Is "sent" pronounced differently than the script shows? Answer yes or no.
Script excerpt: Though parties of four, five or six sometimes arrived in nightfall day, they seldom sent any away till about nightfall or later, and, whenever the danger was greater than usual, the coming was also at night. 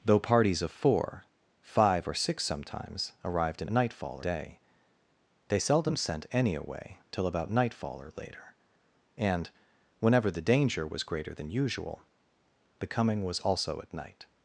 no